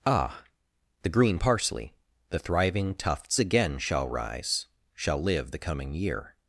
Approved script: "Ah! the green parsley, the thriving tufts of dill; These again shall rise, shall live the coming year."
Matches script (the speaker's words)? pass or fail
fail